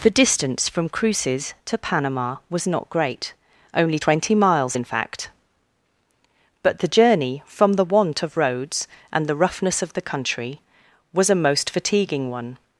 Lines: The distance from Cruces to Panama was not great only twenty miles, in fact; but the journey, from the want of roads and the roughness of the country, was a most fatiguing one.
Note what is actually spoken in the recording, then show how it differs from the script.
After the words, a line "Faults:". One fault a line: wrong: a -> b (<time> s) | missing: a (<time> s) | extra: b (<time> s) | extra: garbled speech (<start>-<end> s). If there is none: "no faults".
The distance from Cruces to Panama was not great only twenty miles, in fact; but the journey, from the want of roads and the roughness of the country, was a most fatiguing one.
Faults:
no faults